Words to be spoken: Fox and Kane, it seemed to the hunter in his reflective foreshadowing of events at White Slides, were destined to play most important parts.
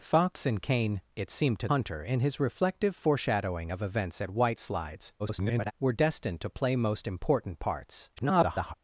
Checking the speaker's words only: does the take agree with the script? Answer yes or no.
no